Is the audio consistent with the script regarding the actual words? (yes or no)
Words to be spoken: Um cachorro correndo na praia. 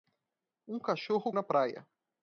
no